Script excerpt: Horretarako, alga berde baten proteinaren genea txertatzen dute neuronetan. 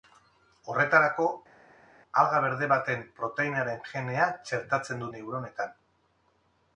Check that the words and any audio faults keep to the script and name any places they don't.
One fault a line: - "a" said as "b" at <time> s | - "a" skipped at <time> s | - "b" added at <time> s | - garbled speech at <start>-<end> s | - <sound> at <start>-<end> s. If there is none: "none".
- "dute" skipped at 5.1 s